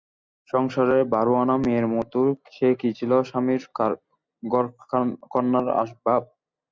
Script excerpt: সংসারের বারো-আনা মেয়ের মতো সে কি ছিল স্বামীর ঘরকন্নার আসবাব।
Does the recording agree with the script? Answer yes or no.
yes